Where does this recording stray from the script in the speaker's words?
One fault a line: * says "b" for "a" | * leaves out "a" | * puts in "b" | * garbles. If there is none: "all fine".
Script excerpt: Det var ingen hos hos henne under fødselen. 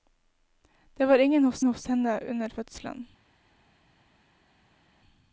all fine